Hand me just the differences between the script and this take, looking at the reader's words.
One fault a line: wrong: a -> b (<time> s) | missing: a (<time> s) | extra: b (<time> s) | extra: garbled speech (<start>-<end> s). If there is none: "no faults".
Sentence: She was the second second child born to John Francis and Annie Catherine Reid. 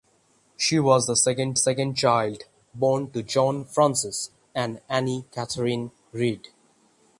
no faults